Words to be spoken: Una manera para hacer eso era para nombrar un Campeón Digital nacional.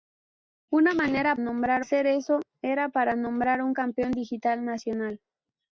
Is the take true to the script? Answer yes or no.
no